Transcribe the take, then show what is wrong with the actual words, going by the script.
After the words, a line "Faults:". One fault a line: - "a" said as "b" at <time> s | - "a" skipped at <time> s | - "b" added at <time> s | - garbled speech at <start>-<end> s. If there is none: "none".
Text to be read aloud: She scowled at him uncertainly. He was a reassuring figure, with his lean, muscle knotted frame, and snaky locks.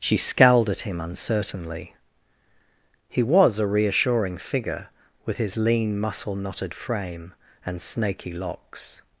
She scowled at him uncertainly. He was a reassuring figure, with his lean, muscle knotted frame, and snaky locks.
Faults:
none